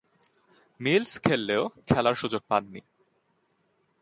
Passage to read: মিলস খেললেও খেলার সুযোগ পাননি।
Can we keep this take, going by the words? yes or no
yes